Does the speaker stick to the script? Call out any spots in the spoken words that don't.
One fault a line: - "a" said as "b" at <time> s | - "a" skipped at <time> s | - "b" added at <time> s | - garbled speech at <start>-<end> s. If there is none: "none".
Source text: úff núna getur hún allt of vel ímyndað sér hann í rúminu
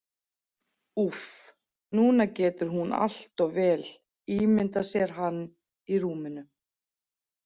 none